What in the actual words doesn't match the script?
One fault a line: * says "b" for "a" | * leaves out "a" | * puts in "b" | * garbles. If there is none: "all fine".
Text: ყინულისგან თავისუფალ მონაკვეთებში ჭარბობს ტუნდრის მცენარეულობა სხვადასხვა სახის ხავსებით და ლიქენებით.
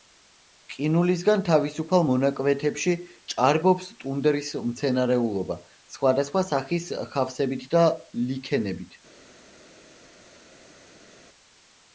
all fine